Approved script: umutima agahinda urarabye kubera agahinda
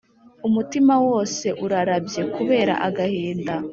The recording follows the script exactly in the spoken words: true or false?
false